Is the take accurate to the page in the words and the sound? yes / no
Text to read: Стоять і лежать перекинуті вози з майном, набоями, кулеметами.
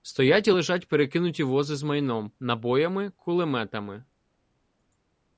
yes